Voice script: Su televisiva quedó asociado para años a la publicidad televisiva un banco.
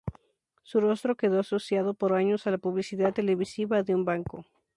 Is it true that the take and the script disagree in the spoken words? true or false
true